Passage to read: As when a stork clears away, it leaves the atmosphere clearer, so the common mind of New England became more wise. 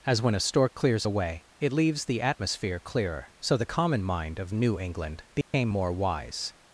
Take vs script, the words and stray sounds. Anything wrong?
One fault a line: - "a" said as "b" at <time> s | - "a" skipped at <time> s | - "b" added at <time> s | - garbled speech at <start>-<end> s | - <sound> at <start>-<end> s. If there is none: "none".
- dropout at 5.4-5.5 s